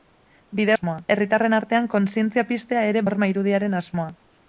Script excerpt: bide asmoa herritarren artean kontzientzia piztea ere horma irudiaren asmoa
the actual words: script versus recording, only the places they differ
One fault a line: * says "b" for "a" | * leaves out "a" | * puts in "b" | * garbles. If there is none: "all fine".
all fine